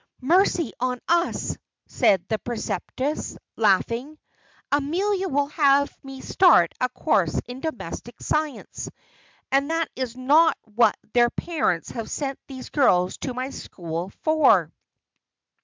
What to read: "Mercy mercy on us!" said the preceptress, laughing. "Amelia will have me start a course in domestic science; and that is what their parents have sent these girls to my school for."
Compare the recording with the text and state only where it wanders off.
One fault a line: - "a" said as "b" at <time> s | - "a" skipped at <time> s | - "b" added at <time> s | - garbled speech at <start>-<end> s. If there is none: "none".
- "mercy" skipped at 0.7 s
- "not" added at 10.1 s